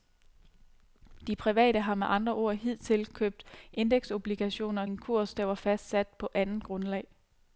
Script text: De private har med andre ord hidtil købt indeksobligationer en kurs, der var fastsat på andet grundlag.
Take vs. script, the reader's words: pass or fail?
pass